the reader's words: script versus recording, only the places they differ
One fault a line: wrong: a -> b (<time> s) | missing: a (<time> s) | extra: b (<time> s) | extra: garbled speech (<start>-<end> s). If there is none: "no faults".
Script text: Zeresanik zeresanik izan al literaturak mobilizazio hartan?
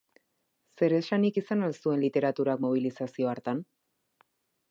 missing: zeresanik (1.4 s)
extra: zuen (1.8 s)